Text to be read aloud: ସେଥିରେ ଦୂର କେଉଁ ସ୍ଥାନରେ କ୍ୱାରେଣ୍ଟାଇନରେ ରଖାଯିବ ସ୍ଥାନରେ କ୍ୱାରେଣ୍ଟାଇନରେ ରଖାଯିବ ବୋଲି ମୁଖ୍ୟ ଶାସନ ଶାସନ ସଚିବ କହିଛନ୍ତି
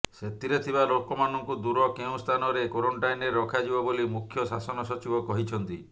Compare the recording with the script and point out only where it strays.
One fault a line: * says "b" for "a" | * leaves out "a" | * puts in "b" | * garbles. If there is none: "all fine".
* puts in "ଥିବା ଲୋକମାନଙ୍କୁ"
* leaves out "ସ୍ଥାନରେ କ୍ୱାରେଣ୍ଟାଇନରେ ରଖାଯିବ"
* leaves out "ଶାସନ"